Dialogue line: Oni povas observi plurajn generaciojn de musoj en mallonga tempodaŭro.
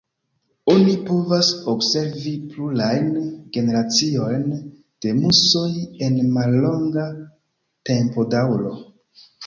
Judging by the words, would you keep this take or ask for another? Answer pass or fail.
pass